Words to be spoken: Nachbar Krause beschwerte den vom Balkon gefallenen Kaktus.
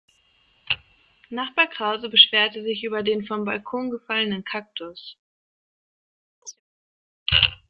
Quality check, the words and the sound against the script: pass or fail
fail